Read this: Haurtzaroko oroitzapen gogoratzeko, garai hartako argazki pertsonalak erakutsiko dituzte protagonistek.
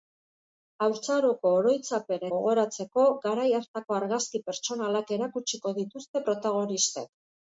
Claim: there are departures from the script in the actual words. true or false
false